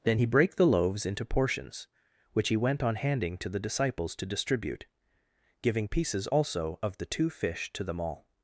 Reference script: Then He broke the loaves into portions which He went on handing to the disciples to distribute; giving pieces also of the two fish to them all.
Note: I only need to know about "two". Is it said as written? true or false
true